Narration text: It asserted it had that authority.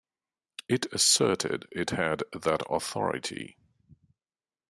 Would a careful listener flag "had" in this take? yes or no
no